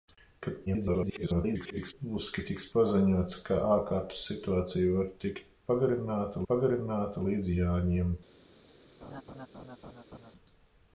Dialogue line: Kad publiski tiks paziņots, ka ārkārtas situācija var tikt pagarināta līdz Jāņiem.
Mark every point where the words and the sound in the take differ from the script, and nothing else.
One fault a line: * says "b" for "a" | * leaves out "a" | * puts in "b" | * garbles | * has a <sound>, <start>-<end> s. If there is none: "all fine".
* garbles
* puts in "pagarināta"
* has a laugh, 9.0-10.3 s